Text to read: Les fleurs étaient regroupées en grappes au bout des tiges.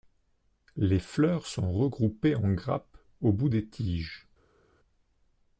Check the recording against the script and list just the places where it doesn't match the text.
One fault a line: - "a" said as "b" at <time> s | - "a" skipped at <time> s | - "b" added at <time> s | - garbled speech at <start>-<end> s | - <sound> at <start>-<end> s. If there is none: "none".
- "étaient" said as "sont" at 1.4 s